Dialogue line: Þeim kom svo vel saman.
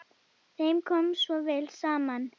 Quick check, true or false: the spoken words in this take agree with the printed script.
true